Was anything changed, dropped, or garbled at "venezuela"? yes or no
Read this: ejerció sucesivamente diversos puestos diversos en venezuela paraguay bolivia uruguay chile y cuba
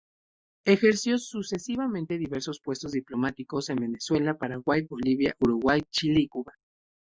no